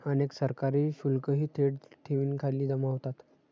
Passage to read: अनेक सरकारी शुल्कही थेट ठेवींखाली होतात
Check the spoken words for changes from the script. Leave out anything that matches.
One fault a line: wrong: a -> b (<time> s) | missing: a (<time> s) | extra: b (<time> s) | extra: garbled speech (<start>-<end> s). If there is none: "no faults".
extra: जमा (2.7 s)